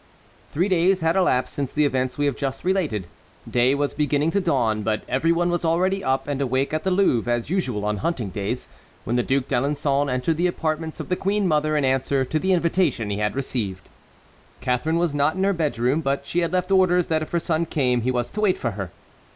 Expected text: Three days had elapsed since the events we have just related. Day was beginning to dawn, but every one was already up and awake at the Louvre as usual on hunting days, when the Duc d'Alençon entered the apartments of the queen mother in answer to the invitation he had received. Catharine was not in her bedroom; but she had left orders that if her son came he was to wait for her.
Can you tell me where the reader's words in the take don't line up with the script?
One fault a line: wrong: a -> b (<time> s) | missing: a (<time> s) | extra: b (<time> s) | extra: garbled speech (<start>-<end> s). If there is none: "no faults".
no faults